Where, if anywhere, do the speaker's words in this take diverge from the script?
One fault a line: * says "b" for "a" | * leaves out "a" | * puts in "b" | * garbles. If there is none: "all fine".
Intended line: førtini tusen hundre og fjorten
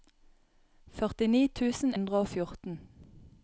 all fine